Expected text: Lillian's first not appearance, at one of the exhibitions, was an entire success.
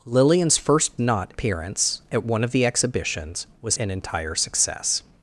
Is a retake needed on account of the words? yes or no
no